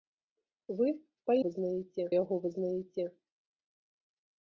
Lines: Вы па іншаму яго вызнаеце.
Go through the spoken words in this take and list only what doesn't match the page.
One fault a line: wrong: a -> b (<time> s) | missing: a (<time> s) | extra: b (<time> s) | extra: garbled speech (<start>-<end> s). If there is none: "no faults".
wrong: іншаму -> вызнаеце (1.4 s)